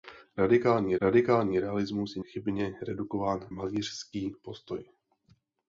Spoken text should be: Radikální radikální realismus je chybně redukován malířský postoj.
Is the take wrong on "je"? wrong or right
right